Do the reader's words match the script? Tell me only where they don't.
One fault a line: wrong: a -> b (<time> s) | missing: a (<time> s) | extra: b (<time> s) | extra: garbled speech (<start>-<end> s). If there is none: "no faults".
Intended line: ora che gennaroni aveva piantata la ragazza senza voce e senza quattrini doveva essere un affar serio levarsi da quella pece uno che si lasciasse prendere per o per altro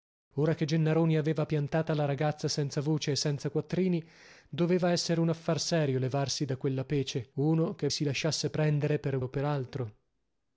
no faults